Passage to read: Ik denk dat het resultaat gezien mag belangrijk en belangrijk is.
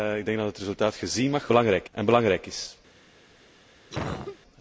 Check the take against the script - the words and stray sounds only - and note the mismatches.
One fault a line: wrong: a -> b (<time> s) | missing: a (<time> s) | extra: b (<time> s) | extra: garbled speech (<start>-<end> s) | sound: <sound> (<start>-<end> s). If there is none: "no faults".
sound: cough (3.9-4.4 s)